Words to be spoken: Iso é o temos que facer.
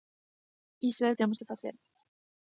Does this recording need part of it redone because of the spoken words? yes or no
no